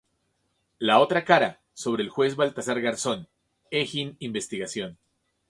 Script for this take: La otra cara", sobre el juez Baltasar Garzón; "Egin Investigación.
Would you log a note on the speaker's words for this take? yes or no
no